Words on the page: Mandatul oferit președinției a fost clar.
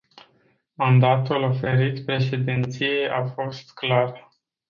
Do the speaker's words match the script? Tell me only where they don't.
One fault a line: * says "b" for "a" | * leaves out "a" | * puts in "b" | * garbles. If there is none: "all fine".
all fine